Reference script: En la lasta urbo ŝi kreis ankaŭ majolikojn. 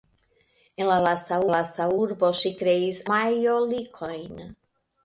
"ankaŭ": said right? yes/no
no